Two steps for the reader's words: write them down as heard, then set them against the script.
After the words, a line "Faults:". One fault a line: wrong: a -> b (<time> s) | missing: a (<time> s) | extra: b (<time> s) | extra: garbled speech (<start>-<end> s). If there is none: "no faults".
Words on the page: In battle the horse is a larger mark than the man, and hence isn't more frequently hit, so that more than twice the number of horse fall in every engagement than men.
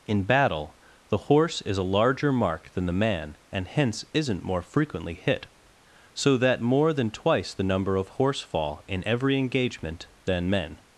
In battle the horse is a larger mark than the man, and hence isn't more frequently hit, so that more than twice the number of horse fall in every engagement than men.
Faults:
no faults